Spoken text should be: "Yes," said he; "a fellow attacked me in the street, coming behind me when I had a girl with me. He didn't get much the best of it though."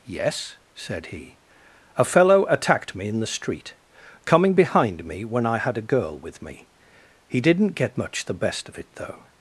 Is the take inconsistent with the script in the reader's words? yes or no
no